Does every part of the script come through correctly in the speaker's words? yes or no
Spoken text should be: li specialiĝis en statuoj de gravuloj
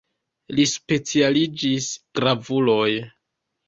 no